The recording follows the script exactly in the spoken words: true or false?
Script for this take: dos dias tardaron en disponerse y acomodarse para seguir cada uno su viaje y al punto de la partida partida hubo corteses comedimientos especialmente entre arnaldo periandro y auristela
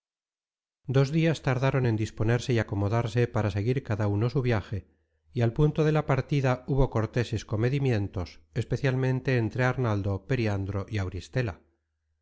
false